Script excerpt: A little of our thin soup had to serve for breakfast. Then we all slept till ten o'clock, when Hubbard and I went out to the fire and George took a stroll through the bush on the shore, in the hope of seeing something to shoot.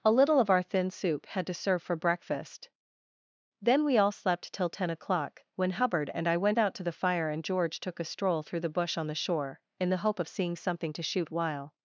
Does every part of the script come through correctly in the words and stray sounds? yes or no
no